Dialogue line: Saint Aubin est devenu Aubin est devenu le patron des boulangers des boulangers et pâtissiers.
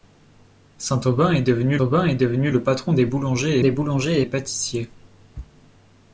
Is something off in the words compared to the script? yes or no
no